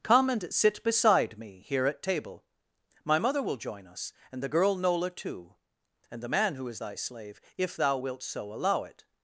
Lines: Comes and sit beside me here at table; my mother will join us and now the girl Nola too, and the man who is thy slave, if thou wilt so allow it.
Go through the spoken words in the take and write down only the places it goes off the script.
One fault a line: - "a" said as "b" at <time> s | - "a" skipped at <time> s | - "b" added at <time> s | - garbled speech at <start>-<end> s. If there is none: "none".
- "Comes" said as "Come" at 0.0 s
- "now" skipped at 4.4 s